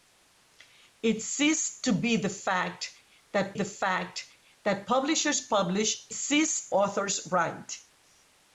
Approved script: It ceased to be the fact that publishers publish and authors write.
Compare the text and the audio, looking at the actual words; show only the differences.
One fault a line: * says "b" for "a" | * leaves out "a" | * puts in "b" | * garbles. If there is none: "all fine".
* puts in "the fact that"
* says "ceased" for "and"